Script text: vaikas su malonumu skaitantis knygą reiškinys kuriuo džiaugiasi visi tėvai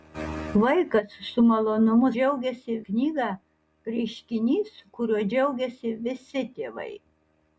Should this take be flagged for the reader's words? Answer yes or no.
yes